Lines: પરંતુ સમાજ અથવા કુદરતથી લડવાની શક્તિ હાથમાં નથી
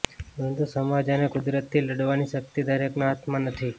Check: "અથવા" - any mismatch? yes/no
yes